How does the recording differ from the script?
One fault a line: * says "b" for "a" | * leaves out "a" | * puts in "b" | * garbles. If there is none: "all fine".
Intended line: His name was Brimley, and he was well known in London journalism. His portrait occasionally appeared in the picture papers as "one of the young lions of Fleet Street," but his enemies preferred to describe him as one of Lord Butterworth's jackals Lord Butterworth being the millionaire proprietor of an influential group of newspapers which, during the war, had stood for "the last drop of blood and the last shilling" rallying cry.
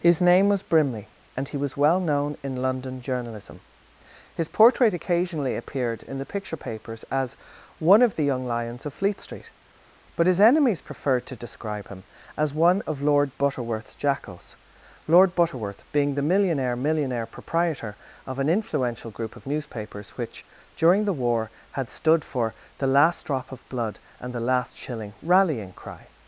* puts in "millionaire"